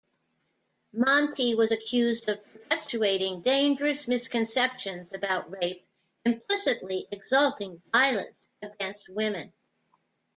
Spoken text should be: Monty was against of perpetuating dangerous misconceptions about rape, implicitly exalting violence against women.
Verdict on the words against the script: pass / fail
fail